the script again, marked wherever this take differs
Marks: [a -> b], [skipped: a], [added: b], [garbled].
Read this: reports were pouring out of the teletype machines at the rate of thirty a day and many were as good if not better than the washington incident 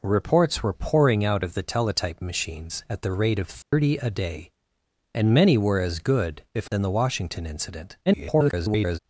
reports were pouring out of the teletype machines at the rate of thirty a day and many were as good if [skipped: not better] than the washington incident [garbled]